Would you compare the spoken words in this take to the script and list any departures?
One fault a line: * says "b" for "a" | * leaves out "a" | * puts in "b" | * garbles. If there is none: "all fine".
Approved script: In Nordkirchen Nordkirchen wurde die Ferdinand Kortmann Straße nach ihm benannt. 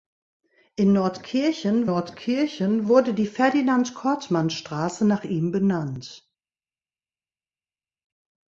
all fine